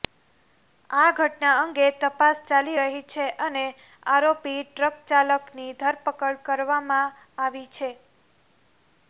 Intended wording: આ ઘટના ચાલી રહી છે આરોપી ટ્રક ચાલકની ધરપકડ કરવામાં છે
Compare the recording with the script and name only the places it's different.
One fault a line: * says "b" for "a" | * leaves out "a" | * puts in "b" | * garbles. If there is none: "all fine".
* puts in "અંગે તપાસ"
* puts in "અને"
* puts in "આવી"